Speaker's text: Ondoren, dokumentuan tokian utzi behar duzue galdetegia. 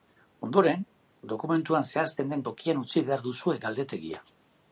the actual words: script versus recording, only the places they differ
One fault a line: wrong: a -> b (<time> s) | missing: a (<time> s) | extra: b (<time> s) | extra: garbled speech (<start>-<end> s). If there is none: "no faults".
extra: zehazten den (1.9 s)